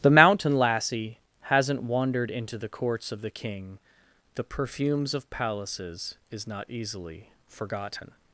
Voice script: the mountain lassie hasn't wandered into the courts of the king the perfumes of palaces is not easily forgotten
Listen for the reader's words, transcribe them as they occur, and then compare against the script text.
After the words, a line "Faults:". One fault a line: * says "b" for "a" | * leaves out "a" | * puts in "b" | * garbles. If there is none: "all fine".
the mountain lassie hasn't wandered into the courts of the king the perfumes of palaces is not easily forgotten
Faults:
all fine